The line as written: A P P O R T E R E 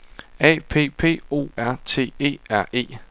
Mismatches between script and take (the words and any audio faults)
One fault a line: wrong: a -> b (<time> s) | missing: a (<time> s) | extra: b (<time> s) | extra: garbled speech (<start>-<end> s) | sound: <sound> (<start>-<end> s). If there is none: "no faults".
no faults